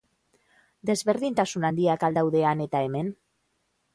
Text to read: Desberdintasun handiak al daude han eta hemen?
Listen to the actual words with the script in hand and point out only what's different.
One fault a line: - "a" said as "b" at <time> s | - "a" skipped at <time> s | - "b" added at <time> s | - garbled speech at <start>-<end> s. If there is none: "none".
none